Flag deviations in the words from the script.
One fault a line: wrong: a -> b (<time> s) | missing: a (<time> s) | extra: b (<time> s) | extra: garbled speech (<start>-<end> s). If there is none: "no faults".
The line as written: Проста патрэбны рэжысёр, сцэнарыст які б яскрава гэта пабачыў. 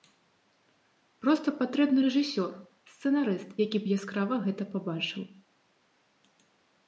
no faults